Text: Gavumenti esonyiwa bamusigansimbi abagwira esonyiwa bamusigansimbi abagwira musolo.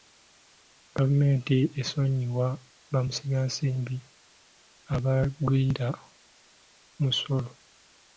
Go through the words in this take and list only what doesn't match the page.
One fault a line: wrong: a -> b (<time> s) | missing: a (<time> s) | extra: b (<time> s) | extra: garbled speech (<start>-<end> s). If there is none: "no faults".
missing: esonyiwa bamusigansimbi abagwira (5.9 s)